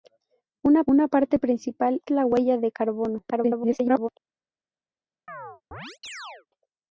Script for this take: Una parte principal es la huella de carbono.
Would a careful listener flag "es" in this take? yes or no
yes